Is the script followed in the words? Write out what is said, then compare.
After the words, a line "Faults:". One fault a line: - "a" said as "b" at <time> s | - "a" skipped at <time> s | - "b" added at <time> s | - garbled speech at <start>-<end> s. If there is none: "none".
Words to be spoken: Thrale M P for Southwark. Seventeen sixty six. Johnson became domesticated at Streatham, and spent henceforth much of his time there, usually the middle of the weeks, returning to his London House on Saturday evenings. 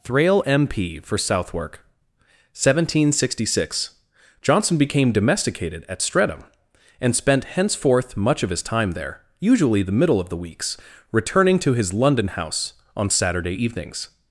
Thrale M P for Southwark. Seventeen sixty six. Johnson became domesticated at Streatham, and spent henceforth much of his time there, usually the middle of the weeks, returning to his London House on Saturday evenings.
Faults:
none